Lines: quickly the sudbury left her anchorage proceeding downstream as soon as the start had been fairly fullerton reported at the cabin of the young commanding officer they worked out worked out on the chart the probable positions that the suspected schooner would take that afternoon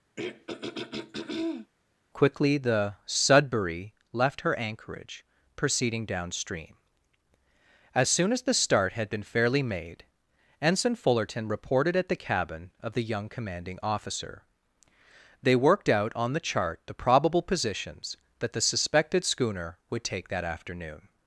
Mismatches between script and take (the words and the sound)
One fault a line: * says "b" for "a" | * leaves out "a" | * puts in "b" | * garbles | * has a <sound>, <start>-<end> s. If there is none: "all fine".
* has a throat clearing, 0.2-1.7 s
* puts in "made ensign"
* leaves out "worked out"